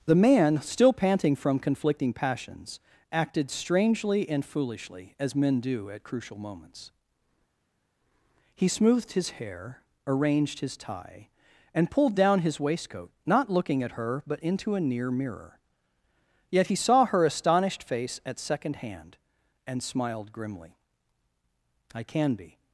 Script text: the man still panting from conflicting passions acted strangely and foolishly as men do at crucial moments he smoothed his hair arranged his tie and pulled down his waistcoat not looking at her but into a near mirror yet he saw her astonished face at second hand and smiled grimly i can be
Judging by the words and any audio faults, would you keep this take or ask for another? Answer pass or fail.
pass